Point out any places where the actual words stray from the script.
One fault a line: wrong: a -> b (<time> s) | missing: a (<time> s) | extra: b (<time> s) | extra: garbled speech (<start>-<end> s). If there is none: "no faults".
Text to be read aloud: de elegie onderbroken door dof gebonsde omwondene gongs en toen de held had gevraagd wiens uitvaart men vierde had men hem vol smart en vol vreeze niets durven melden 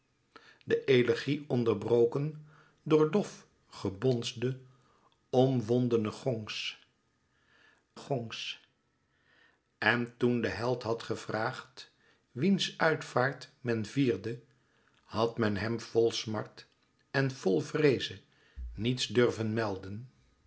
extra: gongs (8.0 s)